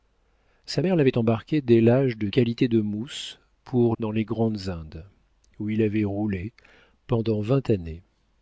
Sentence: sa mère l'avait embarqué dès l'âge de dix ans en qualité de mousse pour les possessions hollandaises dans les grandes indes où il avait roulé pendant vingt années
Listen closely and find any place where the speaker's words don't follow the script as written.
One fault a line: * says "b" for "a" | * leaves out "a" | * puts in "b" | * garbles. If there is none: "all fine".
* leaves out "dix ans en"
* leaves out "les possessions hollandaises"